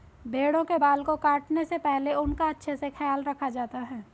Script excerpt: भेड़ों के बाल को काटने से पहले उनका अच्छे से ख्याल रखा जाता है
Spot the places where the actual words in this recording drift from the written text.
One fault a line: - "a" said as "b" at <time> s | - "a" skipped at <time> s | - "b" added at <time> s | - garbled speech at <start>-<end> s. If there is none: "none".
none